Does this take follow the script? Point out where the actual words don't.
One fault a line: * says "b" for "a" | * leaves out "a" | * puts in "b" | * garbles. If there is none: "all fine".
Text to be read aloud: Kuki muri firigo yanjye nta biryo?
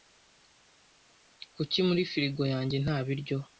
all fine